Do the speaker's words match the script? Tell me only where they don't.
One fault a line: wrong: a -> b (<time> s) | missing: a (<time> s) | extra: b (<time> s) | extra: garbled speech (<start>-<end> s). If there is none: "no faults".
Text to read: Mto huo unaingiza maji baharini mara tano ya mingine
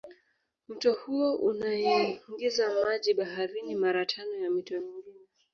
extra: mito (4.5 s)